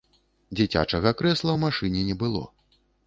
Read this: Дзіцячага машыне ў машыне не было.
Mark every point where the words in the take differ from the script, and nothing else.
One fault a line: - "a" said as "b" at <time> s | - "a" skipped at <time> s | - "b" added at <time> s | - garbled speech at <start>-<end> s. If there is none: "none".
- "машыне" said as "крэсла" at 1.2 s